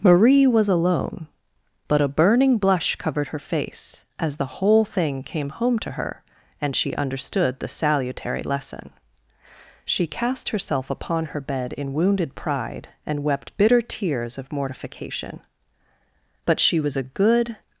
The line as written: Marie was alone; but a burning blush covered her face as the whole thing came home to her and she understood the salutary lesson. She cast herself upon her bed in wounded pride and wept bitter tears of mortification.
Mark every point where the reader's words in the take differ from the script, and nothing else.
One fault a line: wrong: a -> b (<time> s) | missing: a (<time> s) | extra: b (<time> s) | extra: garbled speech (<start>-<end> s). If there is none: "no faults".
extra: But she was a good (16.4 s)